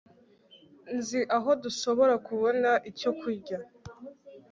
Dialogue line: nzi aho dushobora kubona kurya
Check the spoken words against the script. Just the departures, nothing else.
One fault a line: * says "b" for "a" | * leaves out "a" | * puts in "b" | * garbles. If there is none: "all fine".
* puts in "icyo"